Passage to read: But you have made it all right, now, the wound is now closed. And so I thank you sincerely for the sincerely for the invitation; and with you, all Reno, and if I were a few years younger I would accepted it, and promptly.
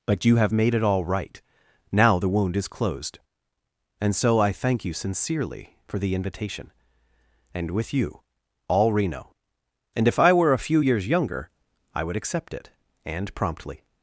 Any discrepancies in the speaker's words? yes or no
yes